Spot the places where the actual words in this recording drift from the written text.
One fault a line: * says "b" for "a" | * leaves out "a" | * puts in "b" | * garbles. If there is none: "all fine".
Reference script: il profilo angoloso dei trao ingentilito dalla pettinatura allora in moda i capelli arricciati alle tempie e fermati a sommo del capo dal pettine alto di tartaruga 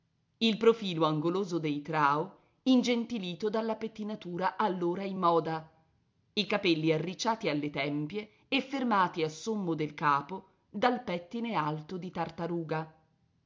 all fine